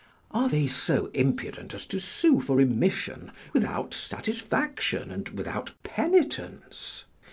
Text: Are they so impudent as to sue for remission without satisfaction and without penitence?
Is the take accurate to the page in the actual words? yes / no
yes